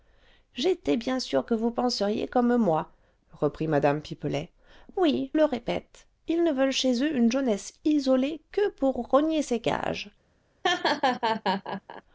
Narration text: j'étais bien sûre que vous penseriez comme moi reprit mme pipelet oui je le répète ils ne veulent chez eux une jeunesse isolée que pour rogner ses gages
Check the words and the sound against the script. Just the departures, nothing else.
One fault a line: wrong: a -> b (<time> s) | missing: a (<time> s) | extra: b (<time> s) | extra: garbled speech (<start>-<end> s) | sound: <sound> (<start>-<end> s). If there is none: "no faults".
missing: je (5.3 s)
sound: laugh (10.6-12.0 s)